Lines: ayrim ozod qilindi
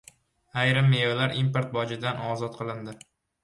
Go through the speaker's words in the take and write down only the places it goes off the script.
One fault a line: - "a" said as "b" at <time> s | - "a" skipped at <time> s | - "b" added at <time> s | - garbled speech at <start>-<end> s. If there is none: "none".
- "mevalar import bojidan" added at 0.9 s